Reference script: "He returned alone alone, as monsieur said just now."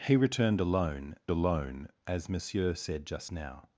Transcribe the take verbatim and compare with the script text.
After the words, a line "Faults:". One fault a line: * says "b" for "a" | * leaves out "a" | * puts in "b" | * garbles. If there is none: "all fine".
"He returned alone alone, as monsieur said just now."
Faults:
all fine